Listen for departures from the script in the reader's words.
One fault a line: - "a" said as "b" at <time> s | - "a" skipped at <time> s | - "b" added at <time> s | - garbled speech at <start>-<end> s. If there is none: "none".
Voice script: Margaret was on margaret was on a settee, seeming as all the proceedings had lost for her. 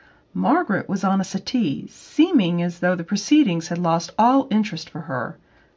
- "margaret was on" skipped at 1.2 s
- "all" said as "though" at 2.8 s
- "all interest" added at 4.2 s